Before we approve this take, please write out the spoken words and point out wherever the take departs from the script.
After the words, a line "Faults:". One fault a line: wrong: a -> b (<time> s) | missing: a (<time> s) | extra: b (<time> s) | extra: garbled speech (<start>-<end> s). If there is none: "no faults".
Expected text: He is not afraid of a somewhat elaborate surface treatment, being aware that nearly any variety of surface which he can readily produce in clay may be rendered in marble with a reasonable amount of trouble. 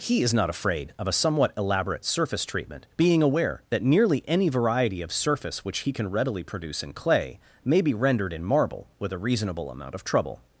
He is not afraid of a somewhat elaborate surface treatment, being aware that nearly any variety of surface which he can readily produce in clay may be rendered in marble with a reasonable amount of trouble.
Faults:
no faults